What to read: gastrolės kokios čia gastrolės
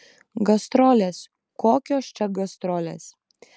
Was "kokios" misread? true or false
false